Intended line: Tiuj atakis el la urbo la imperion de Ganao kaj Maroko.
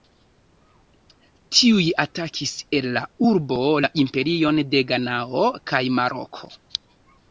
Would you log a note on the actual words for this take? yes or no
no